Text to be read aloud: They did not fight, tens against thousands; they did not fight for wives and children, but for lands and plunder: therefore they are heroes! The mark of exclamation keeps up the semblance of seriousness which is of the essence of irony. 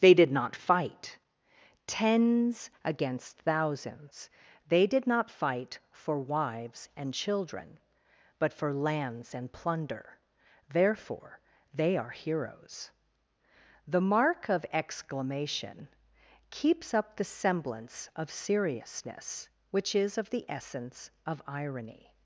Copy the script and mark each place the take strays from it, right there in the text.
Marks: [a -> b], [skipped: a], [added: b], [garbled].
They did not fight, tens against thousands; they did not fight for wives and children, but for lands and plunder: therefore they are heroes! The mark of exclamation keeps up the semblance of seriousness which is of the essence of irony.